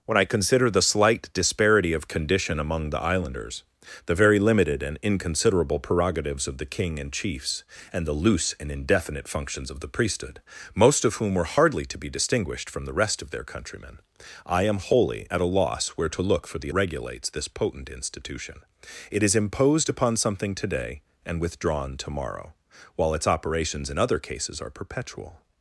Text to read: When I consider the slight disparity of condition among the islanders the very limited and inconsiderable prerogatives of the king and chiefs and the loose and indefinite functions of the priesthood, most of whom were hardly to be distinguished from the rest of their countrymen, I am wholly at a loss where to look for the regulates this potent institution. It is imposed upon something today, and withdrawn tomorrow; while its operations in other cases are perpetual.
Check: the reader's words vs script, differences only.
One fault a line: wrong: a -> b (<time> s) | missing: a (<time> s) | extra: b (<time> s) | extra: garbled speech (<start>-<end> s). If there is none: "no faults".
no faults